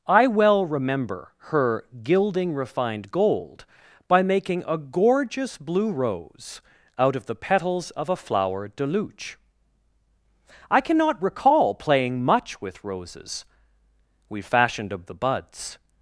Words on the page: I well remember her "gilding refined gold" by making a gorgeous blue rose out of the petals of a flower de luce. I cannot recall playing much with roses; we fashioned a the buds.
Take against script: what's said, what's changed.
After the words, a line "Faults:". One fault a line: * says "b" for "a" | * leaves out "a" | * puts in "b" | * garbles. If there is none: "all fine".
I well remember her "gilding refined gold" by making a gorgeous blue rose out of the petals of a flower de luce. I cannot recall playing much with roses; we fashioned a the buds.
Faults:
all fine